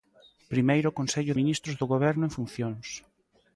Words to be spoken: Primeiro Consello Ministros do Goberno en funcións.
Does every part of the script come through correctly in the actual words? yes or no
yes